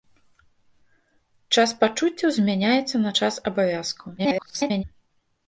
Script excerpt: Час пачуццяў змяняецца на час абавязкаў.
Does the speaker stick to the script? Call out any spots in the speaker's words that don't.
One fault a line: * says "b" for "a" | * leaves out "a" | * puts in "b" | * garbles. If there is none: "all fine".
* garbles